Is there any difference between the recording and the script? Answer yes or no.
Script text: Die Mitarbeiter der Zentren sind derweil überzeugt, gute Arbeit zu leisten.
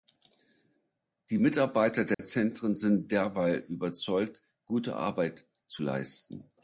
no